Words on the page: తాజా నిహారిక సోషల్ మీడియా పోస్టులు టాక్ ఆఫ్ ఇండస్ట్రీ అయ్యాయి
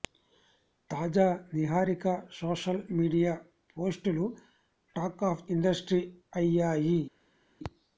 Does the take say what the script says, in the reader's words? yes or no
yes